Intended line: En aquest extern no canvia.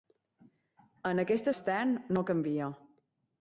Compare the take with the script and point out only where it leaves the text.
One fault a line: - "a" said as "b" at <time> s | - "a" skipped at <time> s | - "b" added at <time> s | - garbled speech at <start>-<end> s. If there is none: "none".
none